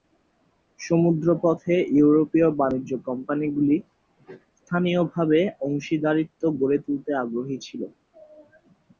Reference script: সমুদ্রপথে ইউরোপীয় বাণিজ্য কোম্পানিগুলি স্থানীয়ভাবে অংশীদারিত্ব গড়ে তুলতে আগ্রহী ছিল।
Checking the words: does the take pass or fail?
pass